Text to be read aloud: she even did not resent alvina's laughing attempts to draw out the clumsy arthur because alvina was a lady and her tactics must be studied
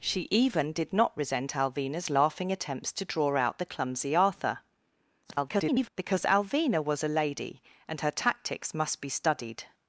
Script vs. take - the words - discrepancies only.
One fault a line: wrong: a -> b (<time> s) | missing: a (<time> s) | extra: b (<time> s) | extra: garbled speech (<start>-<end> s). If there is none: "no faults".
extra: garbled speech (5.2-5.9 s)